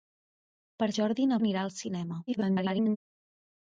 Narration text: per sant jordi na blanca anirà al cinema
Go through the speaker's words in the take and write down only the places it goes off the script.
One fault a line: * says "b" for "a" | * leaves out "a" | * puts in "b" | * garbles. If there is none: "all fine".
* leaves out "sant"
* leaves out "blanca"
* garbles